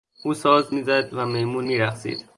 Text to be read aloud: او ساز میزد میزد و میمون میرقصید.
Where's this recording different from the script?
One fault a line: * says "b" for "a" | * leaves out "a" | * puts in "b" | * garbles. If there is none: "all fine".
* leaves out "میزد"